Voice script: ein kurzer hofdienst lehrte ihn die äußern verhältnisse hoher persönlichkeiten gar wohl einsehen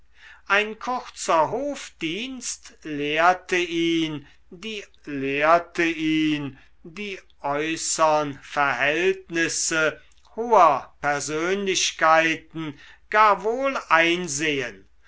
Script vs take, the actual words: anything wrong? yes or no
yes